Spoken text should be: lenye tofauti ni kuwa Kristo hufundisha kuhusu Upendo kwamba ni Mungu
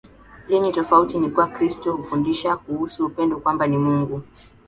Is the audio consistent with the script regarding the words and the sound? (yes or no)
yes